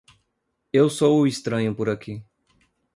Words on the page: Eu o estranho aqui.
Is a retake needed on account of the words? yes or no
yes